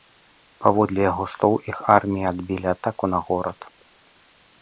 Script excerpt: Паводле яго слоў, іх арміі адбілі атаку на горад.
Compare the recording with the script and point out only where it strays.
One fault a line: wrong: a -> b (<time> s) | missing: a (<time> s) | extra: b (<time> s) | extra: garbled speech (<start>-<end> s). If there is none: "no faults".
no faults